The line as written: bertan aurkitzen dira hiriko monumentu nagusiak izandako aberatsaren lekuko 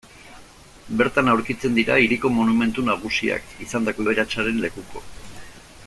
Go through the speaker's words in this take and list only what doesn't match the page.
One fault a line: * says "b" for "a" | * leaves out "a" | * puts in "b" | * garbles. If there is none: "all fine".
all fine